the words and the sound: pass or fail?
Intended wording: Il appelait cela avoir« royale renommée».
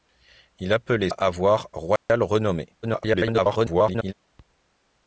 fail